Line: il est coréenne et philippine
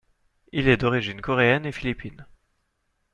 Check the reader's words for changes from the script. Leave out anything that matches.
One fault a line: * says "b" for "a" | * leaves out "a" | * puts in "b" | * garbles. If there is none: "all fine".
* puts in "d'origine"